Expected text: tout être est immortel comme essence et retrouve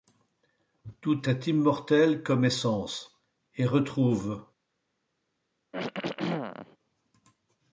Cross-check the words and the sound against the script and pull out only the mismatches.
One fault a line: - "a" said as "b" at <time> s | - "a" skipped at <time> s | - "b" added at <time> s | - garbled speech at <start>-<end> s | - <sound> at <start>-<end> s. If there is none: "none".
- "être" skipped at 1.3 s
- throat clearing at 5.7-6.8 s